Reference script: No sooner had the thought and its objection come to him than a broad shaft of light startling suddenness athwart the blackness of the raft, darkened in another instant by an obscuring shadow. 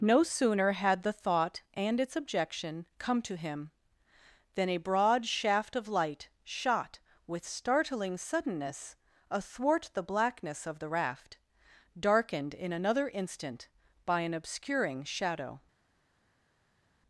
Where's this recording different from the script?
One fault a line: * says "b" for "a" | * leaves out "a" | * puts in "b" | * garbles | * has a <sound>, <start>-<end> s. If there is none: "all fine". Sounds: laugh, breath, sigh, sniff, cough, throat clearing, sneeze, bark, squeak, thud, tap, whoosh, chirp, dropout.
* puts in "shot with"